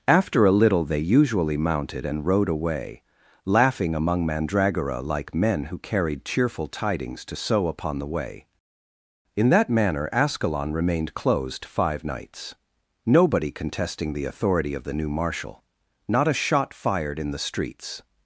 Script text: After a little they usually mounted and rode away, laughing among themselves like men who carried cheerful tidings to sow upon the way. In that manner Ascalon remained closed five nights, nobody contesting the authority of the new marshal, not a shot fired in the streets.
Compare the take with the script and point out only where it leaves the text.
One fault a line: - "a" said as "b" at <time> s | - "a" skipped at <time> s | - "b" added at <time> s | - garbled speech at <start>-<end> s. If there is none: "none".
- "themselves" said as "mandragora" at 4.2 s